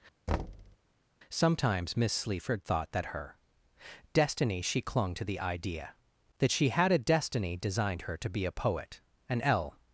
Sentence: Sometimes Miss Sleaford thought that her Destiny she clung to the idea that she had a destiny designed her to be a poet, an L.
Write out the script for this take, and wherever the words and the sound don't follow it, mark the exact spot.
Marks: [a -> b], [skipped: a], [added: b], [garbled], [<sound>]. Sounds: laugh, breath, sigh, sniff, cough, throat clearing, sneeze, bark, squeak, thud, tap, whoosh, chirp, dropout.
[thud] Sometimes Miss Sleaford thought that her Destiny she clung to the idea that she had a destiny designed her to be a poet, an L.